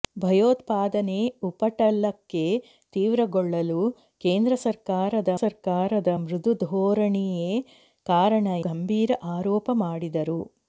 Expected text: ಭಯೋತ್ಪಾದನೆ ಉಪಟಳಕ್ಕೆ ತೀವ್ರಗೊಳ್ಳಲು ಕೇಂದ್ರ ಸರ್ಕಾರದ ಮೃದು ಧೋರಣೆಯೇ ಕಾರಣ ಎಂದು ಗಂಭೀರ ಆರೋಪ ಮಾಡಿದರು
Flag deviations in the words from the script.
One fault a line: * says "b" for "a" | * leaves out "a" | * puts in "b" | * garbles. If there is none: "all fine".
* puts in "ಸರ್ಕಾರದ"
* leaves out "ಎಂದು"